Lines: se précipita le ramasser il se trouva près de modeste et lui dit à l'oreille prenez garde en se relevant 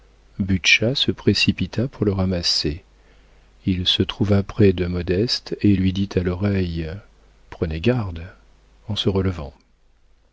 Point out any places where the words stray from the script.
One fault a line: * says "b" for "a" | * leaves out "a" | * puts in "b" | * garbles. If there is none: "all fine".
* puts in "pour"